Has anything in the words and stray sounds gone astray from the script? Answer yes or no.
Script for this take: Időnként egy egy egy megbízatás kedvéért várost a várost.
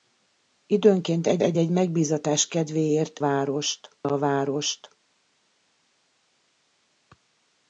no